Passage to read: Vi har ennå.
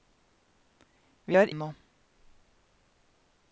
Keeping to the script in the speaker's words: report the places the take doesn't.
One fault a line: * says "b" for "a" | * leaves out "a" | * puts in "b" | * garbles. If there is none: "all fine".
all fine